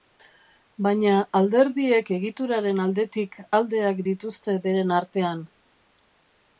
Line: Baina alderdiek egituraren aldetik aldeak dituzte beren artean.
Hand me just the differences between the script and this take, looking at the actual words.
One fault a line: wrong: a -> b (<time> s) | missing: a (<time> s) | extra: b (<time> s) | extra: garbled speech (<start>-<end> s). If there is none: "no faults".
no faults